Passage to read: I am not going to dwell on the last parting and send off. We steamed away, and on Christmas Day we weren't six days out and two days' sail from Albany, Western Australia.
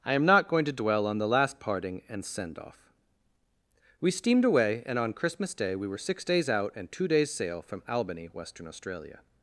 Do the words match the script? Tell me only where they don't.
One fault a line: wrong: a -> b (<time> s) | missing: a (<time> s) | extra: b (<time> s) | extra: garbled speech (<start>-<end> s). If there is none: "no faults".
wrong: weren't -> were (5.9 s)